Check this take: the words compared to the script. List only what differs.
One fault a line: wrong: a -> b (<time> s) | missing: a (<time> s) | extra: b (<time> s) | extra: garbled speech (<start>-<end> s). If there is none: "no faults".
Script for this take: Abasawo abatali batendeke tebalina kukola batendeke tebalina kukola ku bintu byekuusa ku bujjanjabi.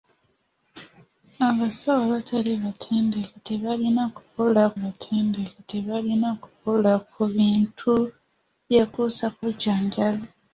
no faults